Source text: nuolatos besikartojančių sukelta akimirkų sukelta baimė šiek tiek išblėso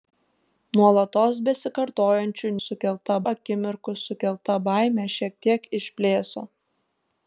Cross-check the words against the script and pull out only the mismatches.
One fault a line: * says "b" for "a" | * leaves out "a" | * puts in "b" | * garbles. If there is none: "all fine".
all fine